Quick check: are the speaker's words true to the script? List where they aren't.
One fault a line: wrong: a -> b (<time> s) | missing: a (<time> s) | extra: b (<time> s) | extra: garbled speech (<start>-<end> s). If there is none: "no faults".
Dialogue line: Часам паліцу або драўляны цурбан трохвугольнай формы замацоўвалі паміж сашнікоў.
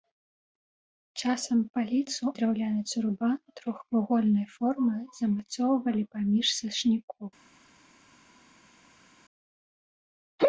missing: або (2.3 s)